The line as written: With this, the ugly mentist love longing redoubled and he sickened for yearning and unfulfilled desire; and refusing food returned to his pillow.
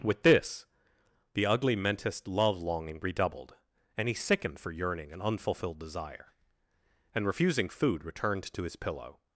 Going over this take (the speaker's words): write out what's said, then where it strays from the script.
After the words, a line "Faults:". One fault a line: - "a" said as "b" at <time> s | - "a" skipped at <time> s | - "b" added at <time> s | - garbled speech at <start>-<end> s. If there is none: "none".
With this, the ugly mentist love longing redoubled and he sickened for yearning and unfulfilled desire; and refusing food returned to his pillow.
Faults:
none